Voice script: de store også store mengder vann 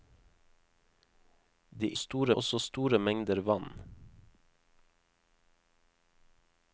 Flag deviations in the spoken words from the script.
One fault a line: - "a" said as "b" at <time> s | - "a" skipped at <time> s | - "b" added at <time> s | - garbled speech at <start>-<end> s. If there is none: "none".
none